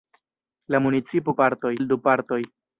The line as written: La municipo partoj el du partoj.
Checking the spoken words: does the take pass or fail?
pass